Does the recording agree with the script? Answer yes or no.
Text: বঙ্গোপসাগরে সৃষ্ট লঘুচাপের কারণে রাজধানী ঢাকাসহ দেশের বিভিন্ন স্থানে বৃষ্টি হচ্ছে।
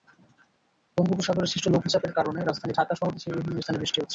yes